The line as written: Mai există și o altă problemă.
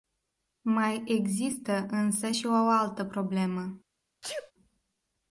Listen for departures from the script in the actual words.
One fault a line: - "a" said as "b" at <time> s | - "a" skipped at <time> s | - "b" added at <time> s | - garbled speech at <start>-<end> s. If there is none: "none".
- "însă" added at 1.9 s